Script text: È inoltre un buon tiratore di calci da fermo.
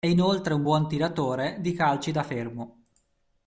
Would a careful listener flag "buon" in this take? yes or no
no